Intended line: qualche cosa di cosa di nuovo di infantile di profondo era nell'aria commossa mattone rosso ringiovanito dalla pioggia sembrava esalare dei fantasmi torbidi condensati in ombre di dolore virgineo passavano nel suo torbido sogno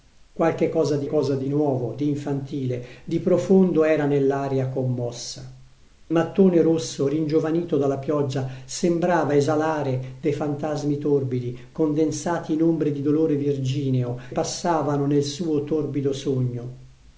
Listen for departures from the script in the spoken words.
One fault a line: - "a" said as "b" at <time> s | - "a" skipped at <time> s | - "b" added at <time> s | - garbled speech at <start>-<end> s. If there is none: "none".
none